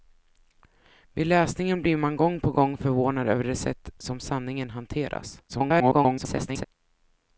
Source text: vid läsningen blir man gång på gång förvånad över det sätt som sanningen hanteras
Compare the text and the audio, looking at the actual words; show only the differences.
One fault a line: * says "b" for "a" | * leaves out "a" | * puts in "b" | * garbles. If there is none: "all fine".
* garbles